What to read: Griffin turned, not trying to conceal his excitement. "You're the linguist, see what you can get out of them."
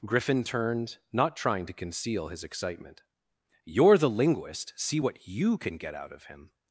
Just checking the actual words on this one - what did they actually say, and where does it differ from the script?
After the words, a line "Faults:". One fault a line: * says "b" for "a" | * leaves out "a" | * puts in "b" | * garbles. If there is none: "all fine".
Griffin turned, not trying to conceal his excitement. "You're the linguist, see what you can get out of him."
Faults:
* says "him" for "them"